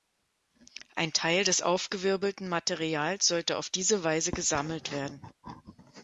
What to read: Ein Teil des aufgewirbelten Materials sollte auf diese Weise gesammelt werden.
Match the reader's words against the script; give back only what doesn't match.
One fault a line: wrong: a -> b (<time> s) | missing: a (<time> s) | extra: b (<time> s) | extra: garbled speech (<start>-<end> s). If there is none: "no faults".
no faults